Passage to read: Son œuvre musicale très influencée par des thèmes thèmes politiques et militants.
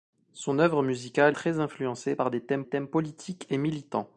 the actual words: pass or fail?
pass